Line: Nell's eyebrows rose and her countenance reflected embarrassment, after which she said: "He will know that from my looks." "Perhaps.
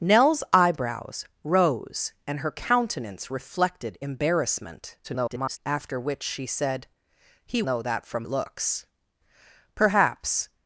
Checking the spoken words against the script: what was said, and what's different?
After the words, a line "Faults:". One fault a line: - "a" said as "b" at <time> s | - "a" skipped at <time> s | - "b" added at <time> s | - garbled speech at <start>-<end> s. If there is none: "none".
Nell's eyebrows rose and her countenance reflected embarrassment, [garbled] after which she said: "He know that from looks." "Perhaps.
Faults:
- garbled speech at 5.0-5.6 s
- "will" skipped at 7.6 s
- "my" skipped at 8.2 s